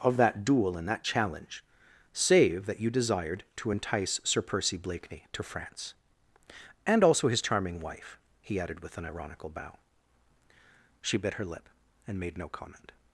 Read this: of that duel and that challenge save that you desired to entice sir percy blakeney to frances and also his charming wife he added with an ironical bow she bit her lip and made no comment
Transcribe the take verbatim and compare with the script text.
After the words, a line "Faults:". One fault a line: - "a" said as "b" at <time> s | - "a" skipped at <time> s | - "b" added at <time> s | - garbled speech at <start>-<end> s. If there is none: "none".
of that duel and that challenge save that you desired to entice sir percy blakeney to france and also his charming wife he added with an ironical bow she bit her lip and made no comment
Faults:
- "frances" said as "france" at 5.4 s